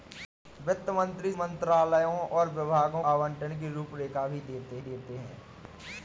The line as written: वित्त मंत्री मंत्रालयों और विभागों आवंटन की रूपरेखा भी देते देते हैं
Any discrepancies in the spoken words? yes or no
no